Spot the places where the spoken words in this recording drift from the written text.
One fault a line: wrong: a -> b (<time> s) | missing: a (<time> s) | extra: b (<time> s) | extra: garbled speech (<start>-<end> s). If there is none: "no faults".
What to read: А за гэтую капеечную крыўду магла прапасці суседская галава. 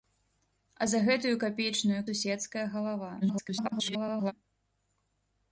missing: крыўду магла прапасці (2.0 s)
extra: garbled speech (3.2-4.3 s)